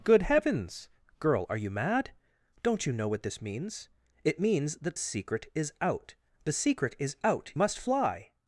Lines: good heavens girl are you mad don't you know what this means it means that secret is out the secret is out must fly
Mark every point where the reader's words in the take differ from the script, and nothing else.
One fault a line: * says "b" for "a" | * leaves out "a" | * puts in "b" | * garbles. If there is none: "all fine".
all fine